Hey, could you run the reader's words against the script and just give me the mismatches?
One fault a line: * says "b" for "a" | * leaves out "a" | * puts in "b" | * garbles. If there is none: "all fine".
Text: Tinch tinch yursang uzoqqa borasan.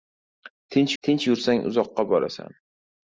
all fine